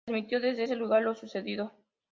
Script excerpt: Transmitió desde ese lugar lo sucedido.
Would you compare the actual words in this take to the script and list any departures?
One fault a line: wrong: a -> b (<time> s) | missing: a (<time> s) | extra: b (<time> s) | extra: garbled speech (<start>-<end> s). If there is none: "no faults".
no faults